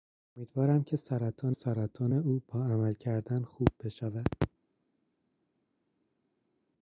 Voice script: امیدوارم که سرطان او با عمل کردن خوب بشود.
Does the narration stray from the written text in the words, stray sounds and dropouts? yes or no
yes